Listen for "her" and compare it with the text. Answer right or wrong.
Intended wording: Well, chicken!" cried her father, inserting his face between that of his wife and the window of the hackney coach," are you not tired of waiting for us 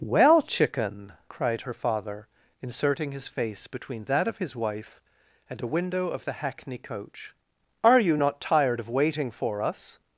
right